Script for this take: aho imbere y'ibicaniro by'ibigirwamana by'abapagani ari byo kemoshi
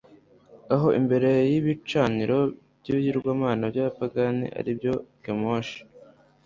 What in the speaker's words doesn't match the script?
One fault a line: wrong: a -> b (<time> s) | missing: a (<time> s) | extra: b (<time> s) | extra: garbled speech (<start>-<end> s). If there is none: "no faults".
no faults